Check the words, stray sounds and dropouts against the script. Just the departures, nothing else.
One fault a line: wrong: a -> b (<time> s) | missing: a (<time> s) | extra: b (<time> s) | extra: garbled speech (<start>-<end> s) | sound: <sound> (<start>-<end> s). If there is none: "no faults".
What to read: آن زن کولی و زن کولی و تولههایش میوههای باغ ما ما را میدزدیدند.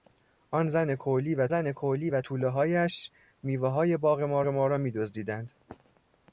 no faults